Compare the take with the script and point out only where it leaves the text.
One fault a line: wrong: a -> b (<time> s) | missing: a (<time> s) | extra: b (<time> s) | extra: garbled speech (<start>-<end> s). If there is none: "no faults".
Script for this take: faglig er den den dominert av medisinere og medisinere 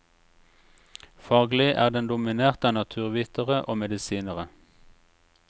missing: den (2.1 s)
wrong: medisinere -> naturvitere (2.8 s)